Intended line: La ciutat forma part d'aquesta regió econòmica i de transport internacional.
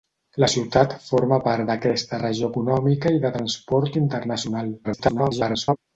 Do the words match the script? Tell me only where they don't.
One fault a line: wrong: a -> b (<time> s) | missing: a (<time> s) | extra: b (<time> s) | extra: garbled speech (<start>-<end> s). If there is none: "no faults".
extra: garbled speech (4.8-5.8 s)